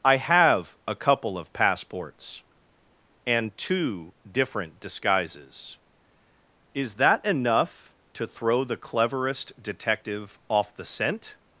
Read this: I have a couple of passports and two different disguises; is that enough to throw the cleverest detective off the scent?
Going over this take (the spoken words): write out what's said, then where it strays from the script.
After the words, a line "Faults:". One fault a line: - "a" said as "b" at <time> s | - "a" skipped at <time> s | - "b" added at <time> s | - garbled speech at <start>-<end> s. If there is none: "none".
I have a couple of passports and two different disguises; is that enough to throw the cleverest detective off the scent?
Faults:
none